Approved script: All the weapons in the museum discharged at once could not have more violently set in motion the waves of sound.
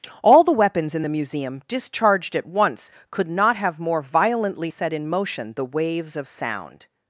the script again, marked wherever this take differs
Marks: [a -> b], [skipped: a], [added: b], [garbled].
All the weapons in the museum discharged at once could not have more violently set in motion the waves of sound.